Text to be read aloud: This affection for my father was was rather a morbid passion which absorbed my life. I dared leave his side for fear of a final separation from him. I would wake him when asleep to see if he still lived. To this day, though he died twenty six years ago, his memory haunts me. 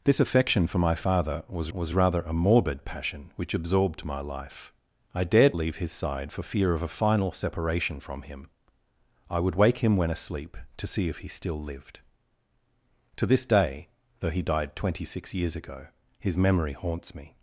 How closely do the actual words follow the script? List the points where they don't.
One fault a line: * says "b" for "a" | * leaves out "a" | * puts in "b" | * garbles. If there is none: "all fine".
all fine